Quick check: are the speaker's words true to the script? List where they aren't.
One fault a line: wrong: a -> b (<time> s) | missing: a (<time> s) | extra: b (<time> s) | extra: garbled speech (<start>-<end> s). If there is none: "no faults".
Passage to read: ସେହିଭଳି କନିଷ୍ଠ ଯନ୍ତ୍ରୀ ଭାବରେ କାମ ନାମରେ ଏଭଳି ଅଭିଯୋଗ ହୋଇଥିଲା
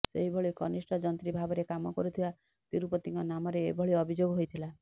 extra: କରୁଥିବା ତିରୁପତିଙ୍କ (2.0 s)